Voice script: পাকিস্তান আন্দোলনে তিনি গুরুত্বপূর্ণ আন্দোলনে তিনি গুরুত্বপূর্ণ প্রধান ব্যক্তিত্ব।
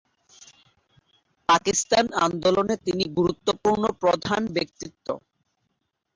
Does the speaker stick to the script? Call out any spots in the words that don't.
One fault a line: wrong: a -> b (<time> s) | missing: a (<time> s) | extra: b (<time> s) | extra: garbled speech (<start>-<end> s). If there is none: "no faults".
missing: আন্দোলনে তিনি গুরুত্বপূর্ণ (3.8 s)